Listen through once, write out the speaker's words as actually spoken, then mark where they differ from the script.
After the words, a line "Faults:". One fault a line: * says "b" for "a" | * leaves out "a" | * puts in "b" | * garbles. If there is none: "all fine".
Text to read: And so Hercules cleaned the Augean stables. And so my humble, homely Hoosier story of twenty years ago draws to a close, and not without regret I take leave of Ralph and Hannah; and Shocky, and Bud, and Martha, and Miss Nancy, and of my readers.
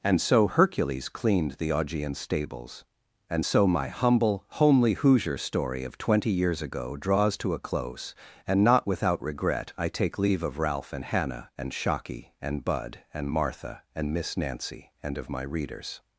And so Hercules cleaned the Augean stables. And so my humble, homely Hoosier story of twenty years ago draws to a close, and not without regret I take leave of Ralph and Hannah; and Shocky, and Bud, and Martha, and Miss Nancy, and of my readers.
Faults:
all fine